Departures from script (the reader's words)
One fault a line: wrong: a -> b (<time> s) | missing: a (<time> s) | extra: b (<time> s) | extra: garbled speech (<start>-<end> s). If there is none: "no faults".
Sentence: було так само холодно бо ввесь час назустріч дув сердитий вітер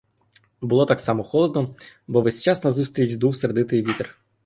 no faults